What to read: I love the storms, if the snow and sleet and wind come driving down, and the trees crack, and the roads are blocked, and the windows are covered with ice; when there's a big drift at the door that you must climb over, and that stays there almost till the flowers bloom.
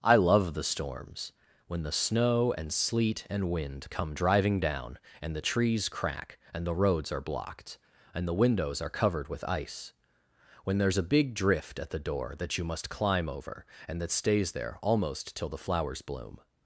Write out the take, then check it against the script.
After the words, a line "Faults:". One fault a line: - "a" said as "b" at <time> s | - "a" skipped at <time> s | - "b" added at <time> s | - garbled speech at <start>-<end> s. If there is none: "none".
I love the storms, when the snow and sleet and wind come driving down, and the trees crack, and the roads are blocked, and the windows are covered with ice; when there's a big drift at the door that you must climb over, and that stays there almost till the flowers bloom.
Faults:
- "if" said as "when" at 1.7 s